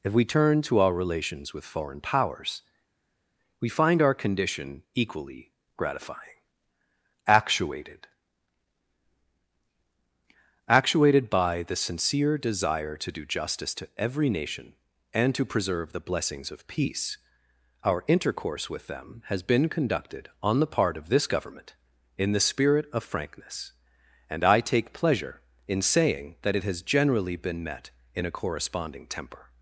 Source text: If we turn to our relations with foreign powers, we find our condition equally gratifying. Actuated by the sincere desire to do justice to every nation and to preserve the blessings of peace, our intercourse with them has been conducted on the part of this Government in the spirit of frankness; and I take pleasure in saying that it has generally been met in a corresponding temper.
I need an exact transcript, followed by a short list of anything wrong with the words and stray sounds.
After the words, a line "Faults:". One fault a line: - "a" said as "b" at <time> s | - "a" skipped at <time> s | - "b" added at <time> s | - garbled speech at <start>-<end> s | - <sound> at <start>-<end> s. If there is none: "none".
If we turn to our relations with foreign powers, we find our condition equally gratifying. Actuated Actuated by the sincere desire to do justice to every nation and to preserve the blessings of peace, our intercourse with them has been conducted on the part of this Government in the spirit of frankness; and I take pleasure in saying that it has generally been met in a corresponding temper.
Faults:
- "Actuated" added at 10.7 s